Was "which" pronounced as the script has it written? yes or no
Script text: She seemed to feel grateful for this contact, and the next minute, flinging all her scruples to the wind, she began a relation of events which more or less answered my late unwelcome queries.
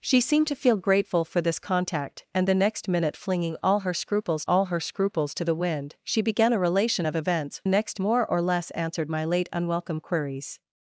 no